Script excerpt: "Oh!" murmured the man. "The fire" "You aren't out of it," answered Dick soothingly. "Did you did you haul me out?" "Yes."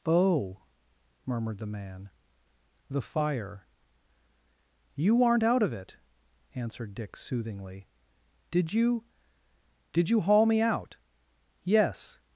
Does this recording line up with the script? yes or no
yes